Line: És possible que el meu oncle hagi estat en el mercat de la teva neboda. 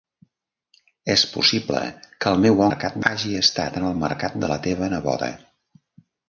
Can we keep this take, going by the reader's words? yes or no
no